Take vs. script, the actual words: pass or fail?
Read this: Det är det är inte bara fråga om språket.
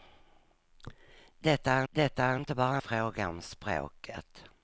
pass